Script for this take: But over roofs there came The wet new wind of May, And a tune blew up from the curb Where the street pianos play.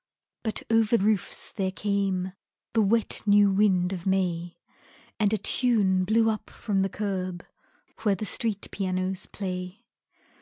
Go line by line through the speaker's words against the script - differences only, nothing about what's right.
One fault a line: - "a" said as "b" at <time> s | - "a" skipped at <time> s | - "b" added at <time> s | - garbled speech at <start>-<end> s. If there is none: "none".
none